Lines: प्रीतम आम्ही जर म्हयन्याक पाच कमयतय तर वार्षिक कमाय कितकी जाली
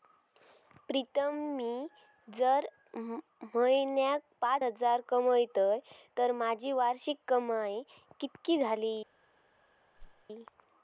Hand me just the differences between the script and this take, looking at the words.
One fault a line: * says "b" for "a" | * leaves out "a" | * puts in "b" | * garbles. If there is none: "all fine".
* says "मी" for "आम्ही"
* puts in "हजार"
* puts in "माझी"